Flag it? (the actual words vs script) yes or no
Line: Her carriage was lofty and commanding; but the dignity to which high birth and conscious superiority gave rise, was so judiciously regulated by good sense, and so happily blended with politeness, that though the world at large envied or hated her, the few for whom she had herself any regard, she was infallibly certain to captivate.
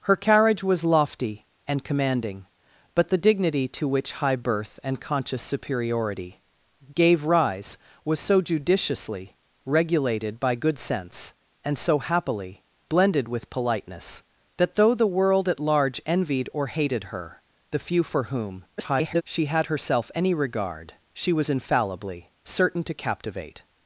yes